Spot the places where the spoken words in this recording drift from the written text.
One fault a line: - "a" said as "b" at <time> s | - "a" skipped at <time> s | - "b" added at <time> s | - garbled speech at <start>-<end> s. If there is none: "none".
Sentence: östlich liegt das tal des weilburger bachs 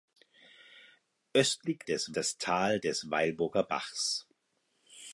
- "liegt" said as "des" at 1.8 s